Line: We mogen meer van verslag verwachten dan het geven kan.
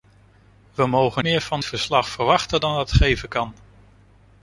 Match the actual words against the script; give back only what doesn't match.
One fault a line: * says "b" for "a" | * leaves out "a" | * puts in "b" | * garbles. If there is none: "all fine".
all fine